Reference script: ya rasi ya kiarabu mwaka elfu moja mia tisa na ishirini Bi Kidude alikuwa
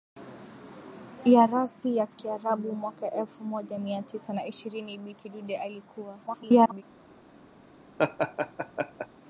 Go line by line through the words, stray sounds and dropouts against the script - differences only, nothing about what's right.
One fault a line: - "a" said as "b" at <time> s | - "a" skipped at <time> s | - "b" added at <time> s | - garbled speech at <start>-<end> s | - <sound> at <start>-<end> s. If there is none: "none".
- garbled speech at 6.3-6.8 s
- laugh at 8.0-9.1 s